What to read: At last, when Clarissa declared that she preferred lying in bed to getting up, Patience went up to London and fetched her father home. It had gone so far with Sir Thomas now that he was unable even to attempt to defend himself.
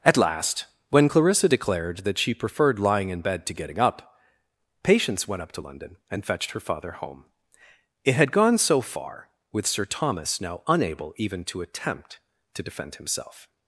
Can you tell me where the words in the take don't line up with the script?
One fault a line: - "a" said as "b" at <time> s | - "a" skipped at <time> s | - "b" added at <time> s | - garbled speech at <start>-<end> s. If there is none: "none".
- "that he was" skipped at 10.6 s